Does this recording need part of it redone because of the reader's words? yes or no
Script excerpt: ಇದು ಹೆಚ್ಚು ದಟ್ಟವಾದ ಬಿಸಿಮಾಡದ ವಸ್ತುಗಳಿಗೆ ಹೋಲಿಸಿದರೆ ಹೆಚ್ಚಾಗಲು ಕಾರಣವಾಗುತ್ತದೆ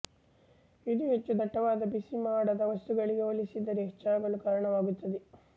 no